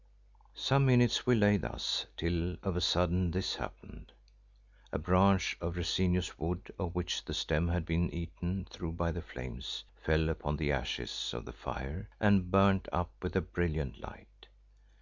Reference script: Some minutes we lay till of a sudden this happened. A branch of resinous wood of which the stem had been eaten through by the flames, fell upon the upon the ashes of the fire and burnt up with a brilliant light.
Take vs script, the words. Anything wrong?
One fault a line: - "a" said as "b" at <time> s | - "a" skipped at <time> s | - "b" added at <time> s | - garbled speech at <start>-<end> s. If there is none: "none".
- "thus" added at 1.6 s
- "upon the" skipped at 10.7 s